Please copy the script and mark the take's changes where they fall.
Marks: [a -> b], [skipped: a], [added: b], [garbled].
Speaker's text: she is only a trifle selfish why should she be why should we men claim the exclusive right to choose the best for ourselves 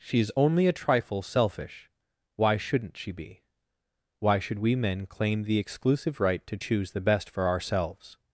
she is only a trifle selfish why [should -> shouldn't] she be why should we men claim the exclusive right to choose the best for ourselves